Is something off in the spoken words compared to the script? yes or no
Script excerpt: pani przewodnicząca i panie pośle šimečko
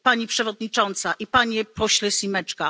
no